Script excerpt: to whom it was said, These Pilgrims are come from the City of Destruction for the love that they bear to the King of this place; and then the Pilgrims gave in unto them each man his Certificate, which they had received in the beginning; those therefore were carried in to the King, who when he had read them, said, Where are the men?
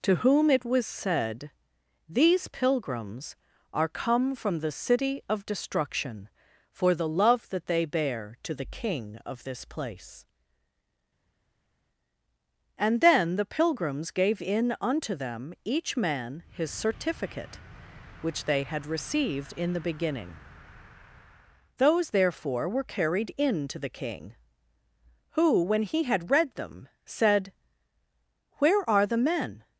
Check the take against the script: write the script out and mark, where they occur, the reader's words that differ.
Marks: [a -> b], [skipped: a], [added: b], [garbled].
to whom it was said, These Pilgrims are come from the City of Destruction for the love that they bear to the King of this place; and then the Pilgrims gave in unto them each man his Certificate, which they had received in the beginning; those therefore were carried in to the King, who when he had read them, said, Where are the men?